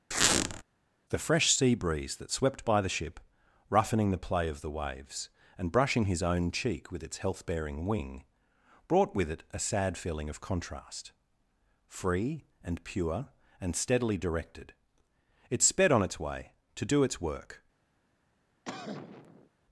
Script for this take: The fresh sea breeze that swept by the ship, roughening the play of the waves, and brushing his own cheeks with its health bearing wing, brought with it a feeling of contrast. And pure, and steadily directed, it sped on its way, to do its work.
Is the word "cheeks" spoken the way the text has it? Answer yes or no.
no